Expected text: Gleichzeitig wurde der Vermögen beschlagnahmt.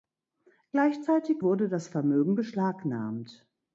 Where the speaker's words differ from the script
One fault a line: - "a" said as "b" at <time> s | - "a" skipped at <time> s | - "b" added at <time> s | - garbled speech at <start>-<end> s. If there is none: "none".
- "der" said as "das" at 1.7 s